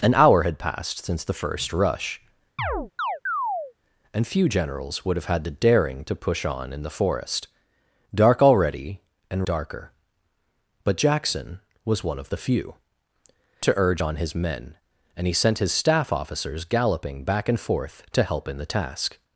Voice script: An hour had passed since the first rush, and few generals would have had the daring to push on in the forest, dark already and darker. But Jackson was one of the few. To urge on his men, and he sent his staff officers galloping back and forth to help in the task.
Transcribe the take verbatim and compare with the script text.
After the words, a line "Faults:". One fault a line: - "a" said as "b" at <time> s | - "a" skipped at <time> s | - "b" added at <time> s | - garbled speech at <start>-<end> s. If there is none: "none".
An hour had passed since the first rush, and few generals would have had the daring to push on in the forest, dark already and darker. But Jackson was one of the few. To urge on his men, and he sent his staff officers galloping back and forth to help in the task.
Faults:
none